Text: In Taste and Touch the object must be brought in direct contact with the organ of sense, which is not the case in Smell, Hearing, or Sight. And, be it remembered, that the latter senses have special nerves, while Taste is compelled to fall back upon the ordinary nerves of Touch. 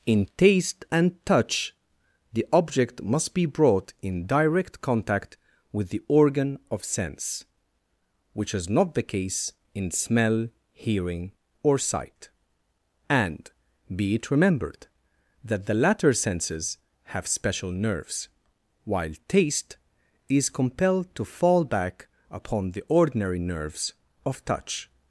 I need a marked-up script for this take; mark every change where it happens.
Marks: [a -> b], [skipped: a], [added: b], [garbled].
In Taste and Touch the object must be brought in direct contact with the organ of sense, which is not the case in Smell, Hearing, or Sight. And, be it remembered, that the latter senses have special nerves, while Taste is compelled to fall back upon the ordinary nerves of Touch.